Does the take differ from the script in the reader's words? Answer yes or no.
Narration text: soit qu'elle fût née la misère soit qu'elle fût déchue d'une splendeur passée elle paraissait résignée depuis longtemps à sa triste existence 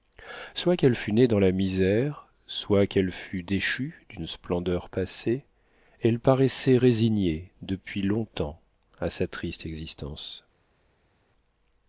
yes